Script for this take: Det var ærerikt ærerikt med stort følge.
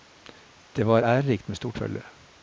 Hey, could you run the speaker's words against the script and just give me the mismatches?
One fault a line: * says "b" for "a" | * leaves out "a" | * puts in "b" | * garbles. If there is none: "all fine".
* leaves out "ærerikt"